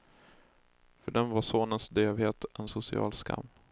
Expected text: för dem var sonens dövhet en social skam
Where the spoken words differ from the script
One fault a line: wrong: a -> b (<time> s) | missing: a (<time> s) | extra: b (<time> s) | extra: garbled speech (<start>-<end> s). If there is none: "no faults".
no faults